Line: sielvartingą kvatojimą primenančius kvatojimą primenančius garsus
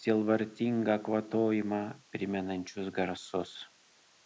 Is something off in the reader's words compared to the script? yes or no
yes